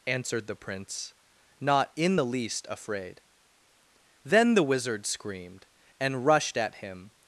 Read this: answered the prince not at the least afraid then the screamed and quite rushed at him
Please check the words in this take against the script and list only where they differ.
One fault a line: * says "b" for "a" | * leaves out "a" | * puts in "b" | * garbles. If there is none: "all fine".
* says "in" for "at"
* puts in "wizard"
* leaves out "quite"